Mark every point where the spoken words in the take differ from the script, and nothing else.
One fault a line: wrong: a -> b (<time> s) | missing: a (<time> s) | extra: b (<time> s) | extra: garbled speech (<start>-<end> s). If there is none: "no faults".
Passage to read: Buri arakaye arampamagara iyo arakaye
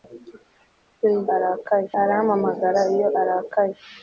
no faults